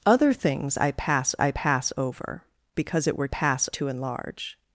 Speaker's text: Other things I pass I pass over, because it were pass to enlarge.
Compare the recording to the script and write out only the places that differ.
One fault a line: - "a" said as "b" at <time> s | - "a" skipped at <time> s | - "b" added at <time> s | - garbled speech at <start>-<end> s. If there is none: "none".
none